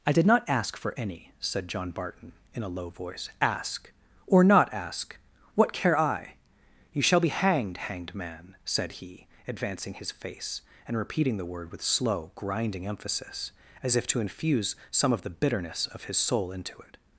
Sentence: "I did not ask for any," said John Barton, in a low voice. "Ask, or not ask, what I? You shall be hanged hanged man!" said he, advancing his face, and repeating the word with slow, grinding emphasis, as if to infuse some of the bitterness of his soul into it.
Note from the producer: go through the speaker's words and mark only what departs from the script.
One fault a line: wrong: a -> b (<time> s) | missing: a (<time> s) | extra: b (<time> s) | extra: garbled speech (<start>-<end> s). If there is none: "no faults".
extra: care (5.7 s)